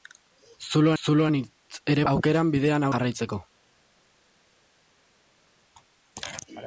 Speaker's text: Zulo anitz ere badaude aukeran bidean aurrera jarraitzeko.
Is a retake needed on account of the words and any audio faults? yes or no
yes